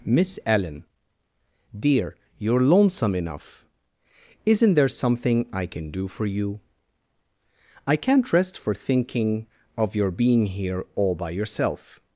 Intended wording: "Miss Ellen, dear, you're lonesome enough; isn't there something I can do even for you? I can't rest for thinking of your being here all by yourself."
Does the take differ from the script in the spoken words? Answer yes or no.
yes